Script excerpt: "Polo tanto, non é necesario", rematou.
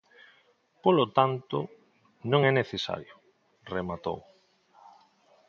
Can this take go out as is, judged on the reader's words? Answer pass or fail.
pass